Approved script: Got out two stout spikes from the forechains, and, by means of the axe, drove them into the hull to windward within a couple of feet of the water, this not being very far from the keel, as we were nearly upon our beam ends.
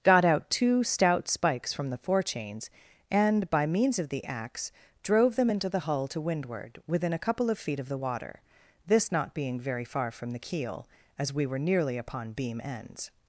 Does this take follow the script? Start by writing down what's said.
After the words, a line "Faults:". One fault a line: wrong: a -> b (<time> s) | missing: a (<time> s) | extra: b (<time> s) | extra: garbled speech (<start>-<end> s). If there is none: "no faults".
Got out two stout spikes from the forechains, and, by means of the axe, drove them into the hull to windward within a couple of feet of the water, this not being very far from the keel, as we were nearly upon beam ends.
Faults:
missing: our (12.3 s)